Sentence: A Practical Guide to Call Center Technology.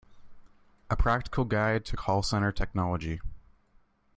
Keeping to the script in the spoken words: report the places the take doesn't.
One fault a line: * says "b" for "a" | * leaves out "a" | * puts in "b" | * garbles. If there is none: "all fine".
all fine